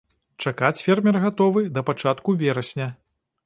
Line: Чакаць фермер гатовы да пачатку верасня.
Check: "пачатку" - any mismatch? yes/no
no